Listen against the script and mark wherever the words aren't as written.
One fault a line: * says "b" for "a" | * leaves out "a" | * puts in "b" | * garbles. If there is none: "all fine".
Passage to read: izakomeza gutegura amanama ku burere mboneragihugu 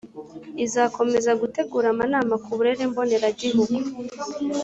all fine